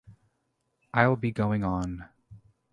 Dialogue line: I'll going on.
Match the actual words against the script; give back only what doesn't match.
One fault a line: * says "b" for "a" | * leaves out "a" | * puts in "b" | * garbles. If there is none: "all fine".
* puts in "be"